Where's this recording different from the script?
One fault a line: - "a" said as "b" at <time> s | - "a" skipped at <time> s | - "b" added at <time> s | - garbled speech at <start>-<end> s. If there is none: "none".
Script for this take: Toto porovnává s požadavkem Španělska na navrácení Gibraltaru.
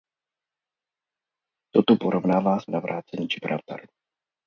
- "požadavkem Španělska na" skipped at 2.6 s